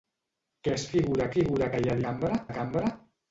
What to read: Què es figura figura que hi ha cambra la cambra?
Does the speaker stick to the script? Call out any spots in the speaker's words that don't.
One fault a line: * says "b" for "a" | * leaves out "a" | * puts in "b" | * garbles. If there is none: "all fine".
all fine